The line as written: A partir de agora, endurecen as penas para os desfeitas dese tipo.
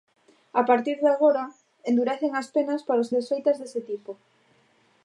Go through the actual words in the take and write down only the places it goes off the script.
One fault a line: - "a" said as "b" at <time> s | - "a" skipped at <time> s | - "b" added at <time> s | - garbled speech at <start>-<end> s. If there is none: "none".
none